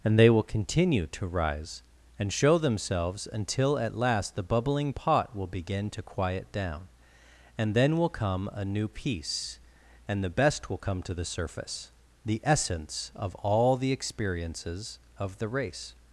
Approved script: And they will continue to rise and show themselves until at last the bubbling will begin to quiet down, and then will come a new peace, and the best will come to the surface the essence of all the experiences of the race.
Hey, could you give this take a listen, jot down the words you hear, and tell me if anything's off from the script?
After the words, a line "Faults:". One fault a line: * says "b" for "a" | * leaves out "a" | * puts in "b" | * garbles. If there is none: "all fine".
And they will continue to rise and show themselves until at last the bubbling pot will begin to quiet down, and then will come a new peace, and the best will come to the surface the essence of all the experiences of the race.
Faults:
* puts in "pot"